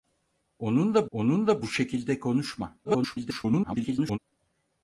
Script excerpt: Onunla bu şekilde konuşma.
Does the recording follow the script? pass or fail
fail